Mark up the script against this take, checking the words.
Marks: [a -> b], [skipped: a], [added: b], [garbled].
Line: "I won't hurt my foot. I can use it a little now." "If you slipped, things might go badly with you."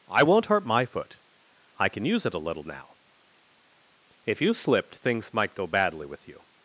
"I won't hurt my foot. I can use it a little now." "If you slipped, things might go badly with you."